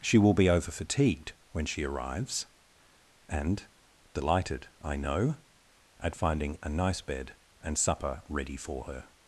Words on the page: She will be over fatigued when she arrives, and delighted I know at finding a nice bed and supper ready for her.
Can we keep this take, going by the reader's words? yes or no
yes